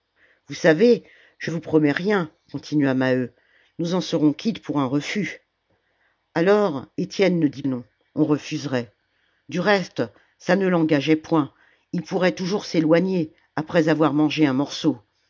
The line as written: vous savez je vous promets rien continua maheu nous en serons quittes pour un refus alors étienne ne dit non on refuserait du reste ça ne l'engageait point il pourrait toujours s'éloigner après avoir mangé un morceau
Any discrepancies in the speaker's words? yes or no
no